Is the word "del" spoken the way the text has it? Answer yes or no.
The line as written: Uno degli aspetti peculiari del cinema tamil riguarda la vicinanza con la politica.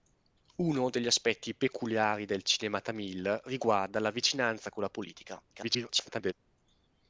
yes